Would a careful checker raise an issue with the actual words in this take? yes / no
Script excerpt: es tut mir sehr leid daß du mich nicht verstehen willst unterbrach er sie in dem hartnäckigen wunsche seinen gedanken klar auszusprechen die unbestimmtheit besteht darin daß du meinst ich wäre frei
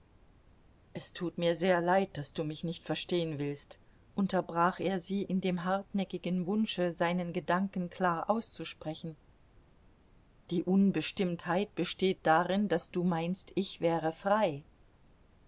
no